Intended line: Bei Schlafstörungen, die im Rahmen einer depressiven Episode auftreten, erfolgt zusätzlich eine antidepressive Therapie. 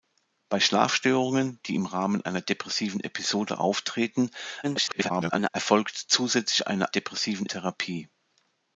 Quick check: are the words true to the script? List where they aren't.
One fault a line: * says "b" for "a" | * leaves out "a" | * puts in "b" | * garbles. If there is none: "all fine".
* garbles
* says "depressiven" for "antidepressive"